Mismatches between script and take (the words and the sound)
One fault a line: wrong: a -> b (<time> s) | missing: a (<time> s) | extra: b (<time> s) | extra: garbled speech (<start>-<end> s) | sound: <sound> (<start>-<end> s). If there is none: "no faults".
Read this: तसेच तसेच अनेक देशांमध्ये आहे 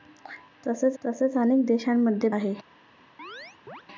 sound: chirp (3.2-3.8 s)